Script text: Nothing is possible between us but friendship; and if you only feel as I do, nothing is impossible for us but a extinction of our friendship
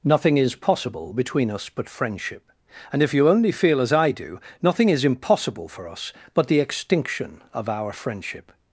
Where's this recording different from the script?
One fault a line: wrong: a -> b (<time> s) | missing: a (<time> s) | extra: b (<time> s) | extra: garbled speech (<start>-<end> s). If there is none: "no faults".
wrong: a -> the (6.5 s)